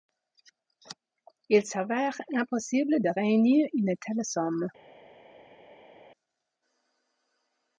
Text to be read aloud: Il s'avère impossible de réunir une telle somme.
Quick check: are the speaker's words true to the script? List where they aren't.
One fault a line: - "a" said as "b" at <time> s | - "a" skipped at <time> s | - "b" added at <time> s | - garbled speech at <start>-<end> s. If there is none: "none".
none